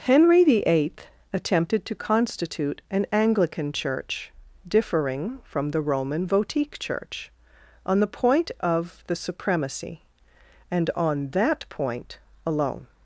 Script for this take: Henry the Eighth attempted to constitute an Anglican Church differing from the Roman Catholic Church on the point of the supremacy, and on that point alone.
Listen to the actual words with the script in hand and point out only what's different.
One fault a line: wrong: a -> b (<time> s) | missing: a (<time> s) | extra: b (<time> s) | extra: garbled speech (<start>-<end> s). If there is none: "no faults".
wrong: Catholic -> Votique (6.3 s)